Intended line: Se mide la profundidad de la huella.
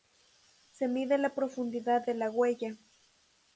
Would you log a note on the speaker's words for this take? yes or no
no